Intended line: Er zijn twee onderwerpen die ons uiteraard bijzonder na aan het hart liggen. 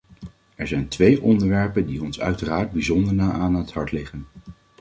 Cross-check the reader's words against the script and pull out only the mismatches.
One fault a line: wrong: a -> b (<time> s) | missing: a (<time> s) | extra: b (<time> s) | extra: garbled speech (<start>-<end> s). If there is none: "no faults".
no faults